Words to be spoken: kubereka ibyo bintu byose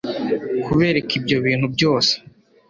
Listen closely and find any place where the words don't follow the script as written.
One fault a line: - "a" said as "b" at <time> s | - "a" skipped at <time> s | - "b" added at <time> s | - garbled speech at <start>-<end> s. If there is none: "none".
none